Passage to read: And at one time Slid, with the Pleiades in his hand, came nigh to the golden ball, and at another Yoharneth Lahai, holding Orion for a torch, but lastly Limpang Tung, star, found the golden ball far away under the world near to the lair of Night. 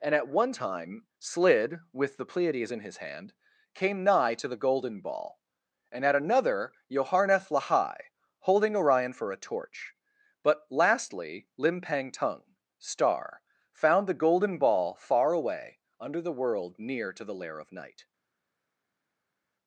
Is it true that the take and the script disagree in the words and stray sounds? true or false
false